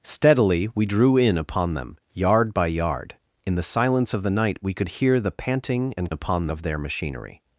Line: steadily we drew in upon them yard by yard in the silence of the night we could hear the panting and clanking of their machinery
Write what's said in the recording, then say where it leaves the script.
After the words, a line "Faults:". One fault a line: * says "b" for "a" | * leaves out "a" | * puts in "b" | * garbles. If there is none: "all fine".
steadily we drew in upon them yard by yard in the silence of the night we could hear the panting and upon of their machinery
Faults:
* says "upon" for "clanking"